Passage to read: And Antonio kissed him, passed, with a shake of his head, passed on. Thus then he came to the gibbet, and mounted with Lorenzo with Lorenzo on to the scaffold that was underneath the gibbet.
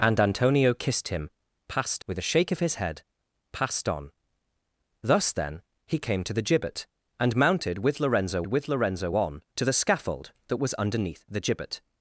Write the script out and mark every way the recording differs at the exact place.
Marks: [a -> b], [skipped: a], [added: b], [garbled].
And Antonio kissed him, passed, with a shake of his head, passed on. Thus then he came to the gibbet, and mounted with Lorenzo with Lorenzo on to the scaffold that was underneath the gibbet.